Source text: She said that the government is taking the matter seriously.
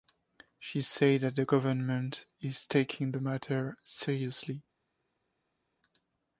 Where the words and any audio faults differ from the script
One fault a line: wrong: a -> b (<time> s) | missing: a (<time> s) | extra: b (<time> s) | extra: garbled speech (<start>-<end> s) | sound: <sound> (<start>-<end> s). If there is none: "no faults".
no faults